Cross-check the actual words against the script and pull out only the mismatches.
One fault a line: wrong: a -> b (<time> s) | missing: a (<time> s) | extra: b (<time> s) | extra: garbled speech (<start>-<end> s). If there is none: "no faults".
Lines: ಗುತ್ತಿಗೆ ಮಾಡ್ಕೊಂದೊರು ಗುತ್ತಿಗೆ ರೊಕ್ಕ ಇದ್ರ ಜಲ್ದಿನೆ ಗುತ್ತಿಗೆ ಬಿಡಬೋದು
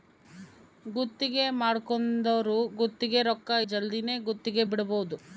missing: ಇದ್ರ (3.5 s)